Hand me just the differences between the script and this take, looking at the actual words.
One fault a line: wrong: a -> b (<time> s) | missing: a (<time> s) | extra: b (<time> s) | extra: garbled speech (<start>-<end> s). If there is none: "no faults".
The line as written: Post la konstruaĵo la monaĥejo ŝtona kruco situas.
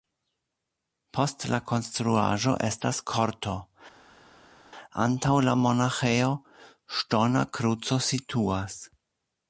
extra: estas korto antaŭ (2.7 s)